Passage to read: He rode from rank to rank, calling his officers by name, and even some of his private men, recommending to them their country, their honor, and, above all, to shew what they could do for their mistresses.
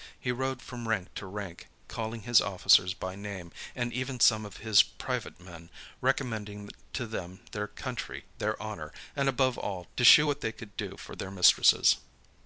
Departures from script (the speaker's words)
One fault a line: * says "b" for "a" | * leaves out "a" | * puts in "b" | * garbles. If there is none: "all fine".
all fine